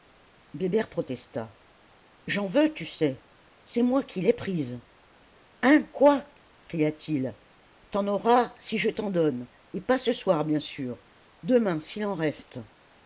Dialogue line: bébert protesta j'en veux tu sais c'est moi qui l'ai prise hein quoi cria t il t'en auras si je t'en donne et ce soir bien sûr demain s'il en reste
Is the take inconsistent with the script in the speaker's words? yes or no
yes